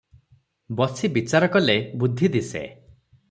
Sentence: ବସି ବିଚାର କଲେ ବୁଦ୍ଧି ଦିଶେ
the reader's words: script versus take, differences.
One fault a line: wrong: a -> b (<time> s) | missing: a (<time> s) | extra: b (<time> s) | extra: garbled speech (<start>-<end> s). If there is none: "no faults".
no faults